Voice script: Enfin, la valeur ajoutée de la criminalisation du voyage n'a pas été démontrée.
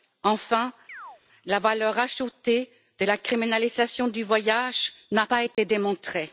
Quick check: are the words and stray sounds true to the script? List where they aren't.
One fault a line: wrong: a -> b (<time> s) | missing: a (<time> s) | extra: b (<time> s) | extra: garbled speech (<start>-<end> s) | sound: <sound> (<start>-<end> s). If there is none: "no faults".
sound: chirp (0.9-1.2 s)
sound: dropout (5.5-5.6 s)